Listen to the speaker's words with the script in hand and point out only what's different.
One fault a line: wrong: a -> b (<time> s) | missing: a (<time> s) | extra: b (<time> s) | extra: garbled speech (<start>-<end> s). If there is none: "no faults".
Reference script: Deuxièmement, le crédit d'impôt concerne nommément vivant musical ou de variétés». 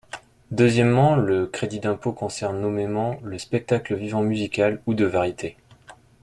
extra: le spectacle (3.2 s)